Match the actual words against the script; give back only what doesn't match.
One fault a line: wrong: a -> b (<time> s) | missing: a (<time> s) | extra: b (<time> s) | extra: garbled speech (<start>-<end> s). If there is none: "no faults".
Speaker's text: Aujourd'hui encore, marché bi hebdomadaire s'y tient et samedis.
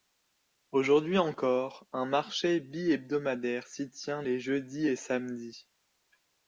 extra: un (1.9 s)
extra: les jeudis (4.2 s)